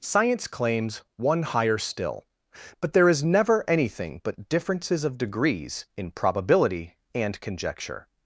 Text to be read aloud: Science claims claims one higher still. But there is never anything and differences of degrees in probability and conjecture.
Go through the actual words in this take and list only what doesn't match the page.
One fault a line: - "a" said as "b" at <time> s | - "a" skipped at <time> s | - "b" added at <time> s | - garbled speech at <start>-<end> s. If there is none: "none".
- "claims" skipped at 1.0 s
- "and" said as "but" at 4.2 s